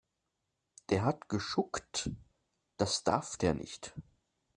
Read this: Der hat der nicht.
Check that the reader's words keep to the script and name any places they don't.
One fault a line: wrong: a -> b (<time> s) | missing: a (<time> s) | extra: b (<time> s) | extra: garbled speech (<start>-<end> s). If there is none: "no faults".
extra: geschuckt das darf (1.3 s)